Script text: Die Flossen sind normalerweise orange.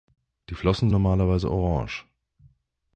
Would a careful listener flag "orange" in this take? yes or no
no